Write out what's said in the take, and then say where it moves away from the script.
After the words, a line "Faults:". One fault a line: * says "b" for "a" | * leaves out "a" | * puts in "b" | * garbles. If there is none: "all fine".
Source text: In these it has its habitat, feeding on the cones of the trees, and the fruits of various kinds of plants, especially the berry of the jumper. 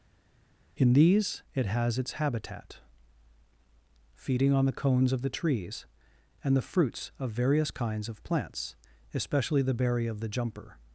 In these it has its habitat, feeding on the cones of the trees, and the fruits of various kinds of plants, especially the berry of the jumper.
Faults:
all fine